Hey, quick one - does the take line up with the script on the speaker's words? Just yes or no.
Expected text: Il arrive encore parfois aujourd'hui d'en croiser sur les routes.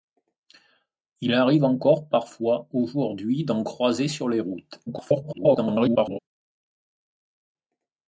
no